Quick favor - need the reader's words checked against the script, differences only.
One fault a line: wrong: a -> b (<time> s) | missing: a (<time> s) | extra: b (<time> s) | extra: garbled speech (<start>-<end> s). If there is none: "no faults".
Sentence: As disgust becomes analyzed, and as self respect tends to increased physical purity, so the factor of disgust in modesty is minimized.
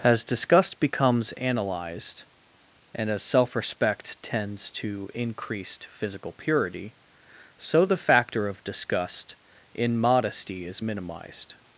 no faults